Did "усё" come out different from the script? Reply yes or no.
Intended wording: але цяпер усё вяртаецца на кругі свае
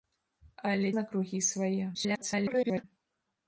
yes